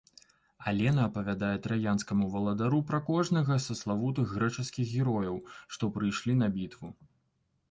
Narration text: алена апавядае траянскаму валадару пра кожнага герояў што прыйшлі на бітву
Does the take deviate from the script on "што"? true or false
false